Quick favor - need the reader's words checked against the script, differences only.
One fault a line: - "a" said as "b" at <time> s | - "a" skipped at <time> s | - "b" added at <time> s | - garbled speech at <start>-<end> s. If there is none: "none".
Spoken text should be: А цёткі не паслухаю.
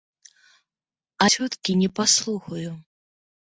none